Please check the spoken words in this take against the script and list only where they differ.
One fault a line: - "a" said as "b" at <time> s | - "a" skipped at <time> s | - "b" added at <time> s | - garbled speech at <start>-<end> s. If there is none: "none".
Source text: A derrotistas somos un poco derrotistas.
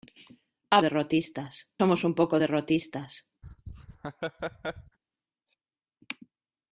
none